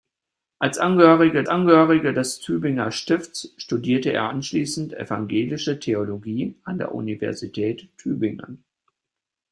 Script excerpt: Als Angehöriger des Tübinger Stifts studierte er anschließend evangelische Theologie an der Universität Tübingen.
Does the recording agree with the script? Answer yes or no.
no